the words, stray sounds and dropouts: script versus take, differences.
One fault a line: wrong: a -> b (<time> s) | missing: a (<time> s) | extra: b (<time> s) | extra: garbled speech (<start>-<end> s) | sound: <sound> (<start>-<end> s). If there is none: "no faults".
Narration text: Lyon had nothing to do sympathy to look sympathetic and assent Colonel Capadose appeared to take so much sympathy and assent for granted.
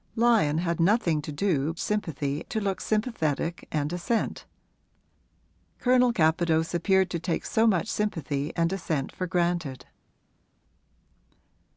no faults